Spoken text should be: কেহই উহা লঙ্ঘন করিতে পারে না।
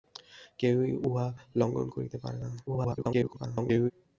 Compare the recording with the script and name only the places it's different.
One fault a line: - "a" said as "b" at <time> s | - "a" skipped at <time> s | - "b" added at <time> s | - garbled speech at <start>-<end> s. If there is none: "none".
- garbled speech at 2.7-3.9 s